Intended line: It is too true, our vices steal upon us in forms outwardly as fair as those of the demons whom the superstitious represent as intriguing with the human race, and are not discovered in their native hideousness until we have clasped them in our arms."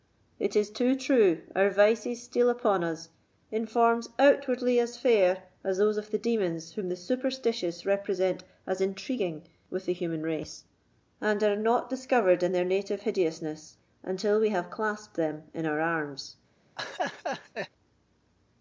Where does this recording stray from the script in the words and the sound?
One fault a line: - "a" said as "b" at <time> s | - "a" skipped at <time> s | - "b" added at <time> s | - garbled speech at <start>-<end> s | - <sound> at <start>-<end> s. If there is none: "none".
- laugh at 16.8-17.7 s